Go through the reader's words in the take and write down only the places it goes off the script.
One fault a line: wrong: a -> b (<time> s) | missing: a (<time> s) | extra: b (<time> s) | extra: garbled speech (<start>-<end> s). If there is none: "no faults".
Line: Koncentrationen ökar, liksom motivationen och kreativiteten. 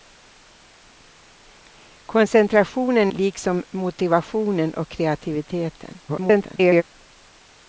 missing: ökar (3.1 s)
extra: garbled speech (6.1-6.8 s)